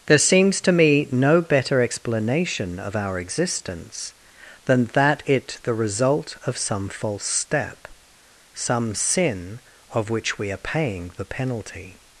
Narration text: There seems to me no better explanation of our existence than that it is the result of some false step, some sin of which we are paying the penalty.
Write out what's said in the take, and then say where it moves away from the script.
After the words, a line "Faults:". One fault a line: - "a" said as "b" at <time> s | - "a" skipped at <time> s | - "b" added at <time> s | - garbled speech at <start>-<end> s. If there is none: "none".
There seems to me no better explanation of our existence than that it the result of some false step, some sin of which we are paying the penalty.
Faults:
- "is" skipped at 5.6 s